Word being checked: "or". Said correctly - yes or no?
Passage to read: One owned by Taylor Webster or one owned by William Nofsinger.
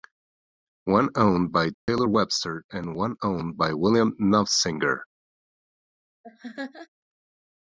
no